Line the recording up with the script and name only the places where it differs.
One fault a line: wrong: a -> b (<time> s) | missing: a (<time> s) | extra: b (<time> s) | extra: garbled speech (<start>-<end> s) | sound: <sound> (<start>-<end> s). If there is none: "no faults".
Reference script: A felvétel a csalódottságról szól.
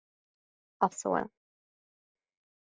missing: felvétel a csalódottságról (0.9 s)